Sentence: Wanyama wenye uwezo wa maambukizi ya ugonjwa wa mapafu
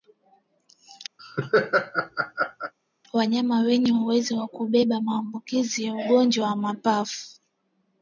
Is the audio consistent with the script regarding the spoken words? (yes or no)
no